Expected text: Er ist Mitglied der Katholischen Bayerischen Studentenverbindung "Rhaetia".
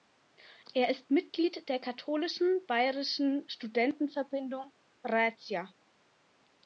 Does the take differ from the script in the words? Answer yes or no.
no